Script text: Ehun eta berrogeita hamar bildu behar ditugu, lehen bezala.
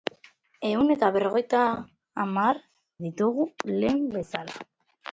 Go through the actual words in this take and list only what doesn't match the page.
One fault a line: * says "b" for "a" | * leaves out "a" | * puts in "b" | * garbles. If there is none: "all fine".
* leaves out "bildu behar"